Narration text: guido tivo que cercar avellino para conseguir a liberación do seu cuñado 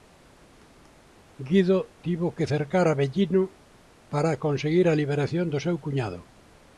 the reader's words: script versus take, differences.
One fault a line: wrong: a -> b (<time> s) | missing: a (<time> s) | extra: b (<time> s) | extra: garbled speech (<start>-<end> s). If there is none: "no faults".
no faults